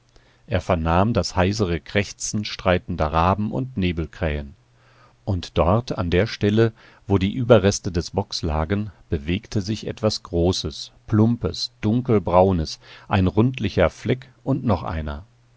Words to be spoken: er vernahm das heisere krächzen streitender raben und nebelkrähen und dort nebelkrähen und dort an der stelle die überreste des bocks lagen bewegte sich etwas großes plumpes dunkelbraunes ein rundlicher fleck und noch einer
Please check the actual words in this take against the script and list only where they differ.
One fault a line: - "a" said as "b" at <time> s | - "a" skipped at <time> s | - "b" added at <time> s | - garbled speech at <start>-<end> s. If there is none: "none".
- "nebelkrähen und dort" skipped at 6.0 s
- "wo" added at 7.0 s